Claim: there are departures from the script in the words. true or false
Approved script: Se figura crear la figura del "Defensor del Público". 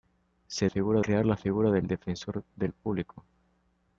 false